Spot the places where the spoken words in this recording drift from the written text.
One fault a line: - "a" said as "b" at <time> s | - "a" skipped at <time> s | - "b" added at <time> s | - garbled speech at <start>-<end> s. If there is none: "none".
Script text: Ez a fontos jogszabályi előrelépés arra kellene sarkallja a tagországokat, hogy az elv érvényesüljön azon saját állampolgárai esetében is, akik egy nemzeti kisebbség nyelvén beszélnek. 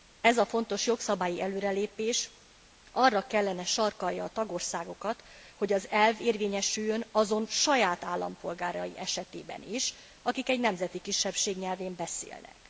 none